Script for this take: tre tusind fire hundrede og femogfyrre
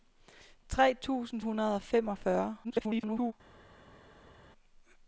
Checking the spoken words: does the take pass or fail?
fail